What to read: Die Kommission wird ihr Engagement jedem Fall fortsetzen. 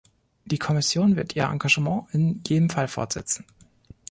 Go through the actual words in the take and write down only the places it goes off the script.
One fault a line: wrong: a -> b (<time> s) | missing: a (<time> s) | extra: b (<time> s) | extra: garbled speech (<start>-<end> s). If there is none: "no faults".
extra: in (2.1 s)